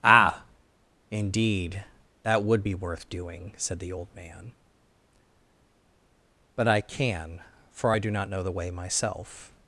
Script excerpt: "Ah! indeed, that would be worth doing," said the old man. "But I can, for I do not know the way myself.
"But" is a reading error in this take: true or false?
false